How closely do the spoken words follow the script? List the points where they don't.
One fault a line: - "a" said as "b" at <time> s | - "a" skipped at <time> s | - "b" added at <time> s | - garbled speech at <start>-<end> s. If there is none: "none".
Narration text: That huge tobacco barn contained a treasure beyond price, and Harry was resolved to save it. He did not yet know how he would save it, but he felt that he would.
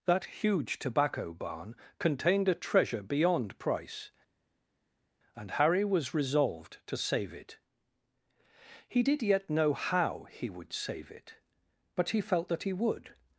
- "not" skipped at 9.2 s